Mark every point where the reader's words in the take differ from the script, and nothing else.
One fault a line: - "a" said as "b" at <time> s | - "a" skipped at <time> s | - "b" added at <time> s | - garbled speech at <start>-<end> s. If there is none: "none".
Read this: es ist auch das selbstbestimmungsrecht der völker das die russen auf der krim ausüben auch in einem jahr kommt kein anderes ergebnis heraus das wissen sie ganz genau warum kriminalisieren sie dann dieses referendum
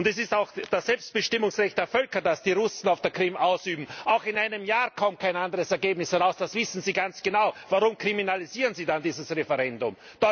none